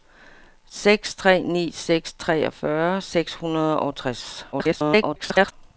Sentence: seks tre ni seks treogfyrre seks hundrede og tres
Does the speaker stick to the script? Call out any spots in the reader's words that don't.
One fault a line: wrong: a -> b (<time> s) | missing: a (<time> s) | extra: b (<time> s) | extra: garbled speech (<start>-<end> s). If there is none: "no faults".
extra: garbled speech (4.5-5.5 s)